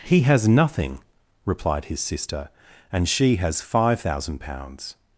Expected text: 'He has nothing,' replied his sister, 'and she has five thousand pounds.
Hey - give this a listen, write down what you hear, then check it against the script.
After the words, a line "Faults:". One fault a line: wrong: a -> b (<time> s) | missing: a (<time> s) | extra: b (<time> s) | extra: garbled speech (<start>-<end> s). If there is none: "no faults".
'He has nothing,' replied his sister, 'and she has five thousand pounds.
Faults:
no faults